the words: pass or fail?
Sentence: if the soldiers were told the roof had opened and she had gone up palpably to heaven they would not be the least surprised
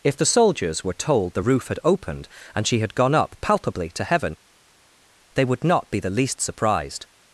pass